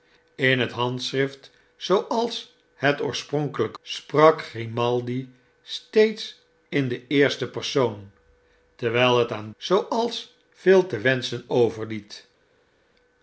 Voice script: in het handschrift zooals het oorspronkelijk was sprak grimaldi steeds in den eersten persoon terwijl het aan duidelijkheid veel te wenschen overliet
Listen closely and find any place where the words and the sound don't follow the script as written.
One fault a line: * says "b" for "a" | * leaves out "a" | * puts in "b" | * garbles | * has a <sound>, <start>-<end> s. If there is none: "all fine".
* leaves out "was"
* says "zooals" for "duidelijkheid"